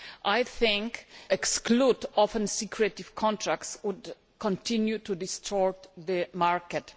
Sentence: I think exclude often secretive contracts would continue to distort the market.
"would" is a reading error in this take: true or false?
false